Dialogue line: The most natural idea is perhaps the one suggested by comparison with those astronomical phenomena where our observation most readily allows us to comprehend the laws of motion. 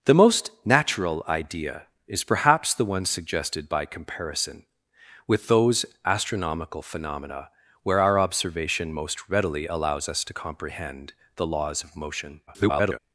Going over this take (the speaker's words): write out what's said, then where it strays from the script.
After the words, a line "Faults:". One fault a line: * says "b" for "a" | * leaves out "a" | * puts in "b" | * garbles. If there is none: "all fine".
The most natural idea is perhaps the one suggested by comparison with those astronomical phenomena where our observation most readily allows us to comprehend the laws of motion. [garbled]
Faults:
* garbles